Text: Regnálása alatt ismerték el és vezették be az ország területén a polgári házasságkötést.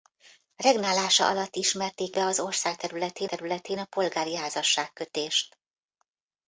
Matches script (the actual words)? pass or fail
fail